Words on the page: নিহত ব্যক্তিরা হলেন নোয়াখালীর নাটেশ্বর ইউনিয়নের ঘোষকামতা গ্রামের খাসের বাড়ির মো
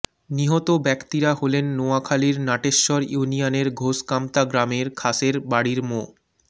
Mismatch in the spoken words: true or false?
false